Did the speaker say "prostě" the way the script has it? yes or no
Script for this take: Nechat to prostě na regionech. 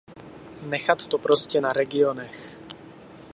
yes